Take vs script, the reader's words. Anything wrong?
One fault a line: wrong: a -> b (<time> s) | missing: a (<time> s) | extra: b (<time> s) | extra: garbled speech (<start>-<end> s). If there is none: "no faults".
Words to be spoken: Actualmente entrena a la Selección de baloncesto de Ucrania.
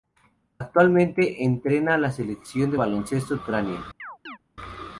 missing: de (3.3 s)